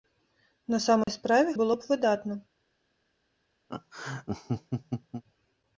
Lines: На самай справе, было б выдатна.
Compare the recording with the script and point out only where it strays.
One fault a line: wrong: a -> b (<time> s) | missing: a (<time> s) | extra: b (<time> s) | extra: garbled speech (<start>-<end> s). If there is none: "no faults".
no faults